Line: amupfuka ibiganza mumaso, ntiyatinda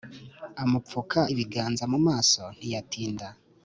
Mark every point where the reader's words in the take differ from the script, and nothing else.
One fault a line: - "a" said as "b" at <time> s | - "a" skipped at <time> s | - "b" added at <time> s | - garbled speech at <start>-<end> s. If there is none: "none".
none